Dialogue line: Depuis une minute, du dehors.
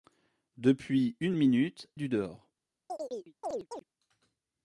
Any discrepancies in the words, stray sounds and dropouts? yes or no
yes